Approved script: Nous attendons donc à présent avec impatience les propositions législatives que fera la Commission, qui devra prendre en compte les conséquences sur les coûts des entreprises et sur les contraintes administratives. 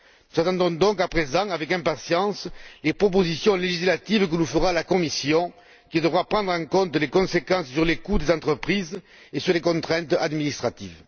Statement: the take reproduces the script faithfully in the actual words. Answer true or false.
false